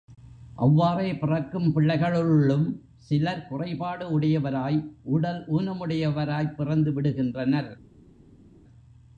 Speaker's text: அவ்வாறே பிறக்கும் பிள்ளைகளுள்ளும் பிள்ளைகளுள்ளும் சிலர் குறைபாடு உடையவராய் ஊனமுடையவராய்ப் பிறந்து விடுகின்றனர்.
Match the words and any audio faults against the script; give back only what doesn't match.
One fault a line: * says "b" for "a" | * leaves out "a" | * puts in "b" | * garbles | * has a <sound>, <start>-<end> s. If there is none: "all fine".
* leaves out "பிள்ளைகளுள்ளும்"
* puts in "உடல்"